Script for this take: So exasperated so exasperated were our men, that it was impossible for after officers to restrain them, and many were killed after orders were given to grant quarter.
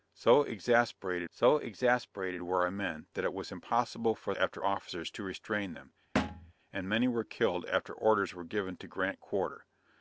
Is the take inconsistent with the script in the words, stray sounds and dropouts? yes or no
yes